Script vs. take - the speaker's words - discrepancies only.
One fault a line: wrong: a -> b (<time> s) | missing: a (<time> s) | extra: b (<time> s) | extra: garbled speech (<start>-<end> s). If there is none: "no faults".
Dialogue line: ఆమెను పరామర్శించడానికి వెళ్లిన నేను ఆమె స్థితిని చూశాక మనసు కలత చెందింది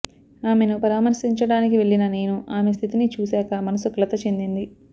no faults